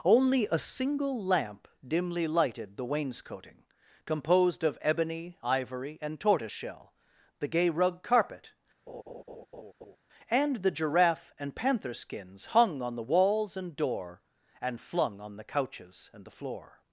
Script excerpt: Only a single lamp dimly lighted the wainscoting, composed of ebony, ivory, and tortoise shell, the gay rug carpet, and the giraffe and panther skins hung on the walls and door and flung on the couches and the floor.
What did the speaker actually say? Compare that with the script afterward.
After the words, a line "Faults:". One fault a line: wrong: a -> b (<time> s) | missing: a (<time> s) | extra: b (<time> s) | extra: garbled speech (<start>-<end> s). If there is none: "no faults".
Only a single lamp dimly lighted the wainscoting, composed of ebony, ivory, and tortoise shell, the gay rug carpet, and the giraffe and panther skins hung on the walls and door and flung on the couches and the floor.
Faults:
no faults